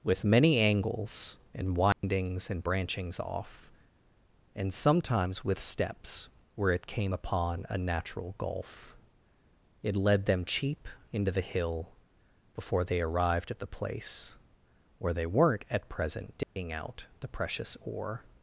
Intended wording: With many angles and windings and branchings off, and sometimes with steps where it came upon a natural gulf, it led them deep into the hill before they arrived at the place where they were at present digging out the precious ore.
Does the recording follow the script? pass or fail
fail